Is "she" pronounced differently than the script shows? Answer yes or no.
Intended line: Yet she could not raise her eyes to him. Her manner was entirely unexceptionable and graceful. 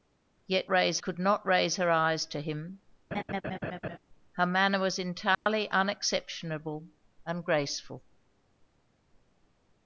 yes